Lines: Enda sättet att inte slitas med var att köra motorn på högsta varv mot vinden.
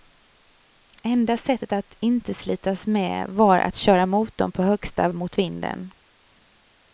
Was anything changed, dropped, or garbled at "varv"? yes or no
yes